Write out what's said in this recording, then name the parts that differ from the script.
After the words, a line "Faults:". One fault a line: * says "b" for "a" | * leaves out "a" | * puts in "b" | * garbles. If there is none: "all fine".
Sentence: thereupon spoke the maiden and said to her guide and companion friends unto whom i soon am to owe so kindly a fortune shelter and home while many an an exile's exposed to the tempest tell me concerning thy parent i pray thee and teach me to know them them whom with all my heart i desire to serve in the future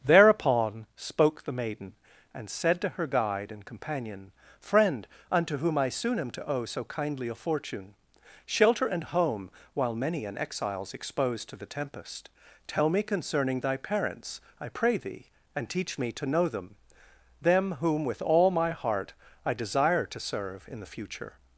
thereupon spoke the maiden and said to her guide and companion friend unto whom i soon am to owe so kindly a fortune shelter and home while many an exile's exposed to the tempest tell me concerning thy parents i pray thee and teach me to know them them whom with all my heart i desire to serve in the future
Faults:
* says "friend" for "friends"
* leaves out "an"
* says "parents" for "parent"